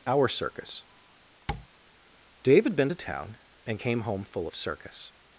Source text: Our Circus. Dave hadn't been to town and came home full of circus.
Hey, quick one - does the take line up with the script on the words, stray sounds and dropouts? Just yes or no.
no